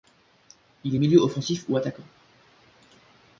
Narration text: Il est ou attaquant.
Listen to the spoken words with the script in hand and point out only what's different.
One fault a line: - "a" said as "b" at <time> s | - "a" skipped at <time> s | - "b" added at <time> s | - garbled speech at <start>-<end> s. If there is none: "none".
- "milieu offensif" added at 1.0 s